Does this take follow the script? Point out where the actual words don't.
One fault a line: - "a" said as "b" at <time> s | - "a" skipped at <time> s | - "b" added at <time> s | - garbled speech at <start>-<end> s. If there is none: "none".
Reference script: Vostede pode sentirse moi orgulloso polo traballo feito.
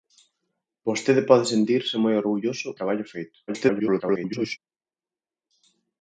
- "polo" skipped at 2.7 s
- garbled speech at 3.5-4.6 s